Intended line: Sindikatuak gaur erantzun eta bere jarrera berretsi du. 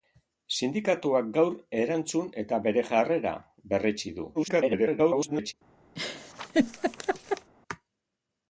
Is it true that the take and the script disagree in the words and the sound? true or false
true